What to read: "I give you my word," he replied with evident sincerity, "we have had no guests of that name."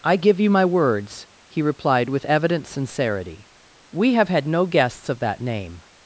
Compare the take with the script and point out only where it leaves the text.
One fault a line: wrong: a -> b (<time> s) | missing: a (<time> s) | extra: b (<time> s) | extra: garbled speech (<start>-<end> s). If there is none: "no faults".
wrong: word -> words (0.7 s)